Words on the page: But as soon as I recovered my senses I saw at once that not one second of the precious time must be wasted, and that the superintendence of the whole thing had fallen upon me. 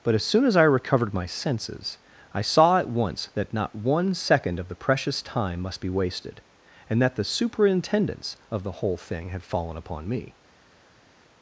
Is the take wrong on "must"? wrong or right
right